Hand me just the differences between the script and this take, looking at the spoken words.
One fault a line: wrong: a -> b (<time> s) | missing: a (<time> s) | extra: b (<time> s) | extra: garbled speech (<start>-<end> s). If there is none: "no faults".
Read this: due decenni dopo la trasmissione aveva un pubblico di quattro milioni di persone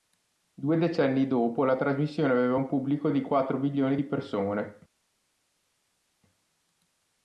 no faults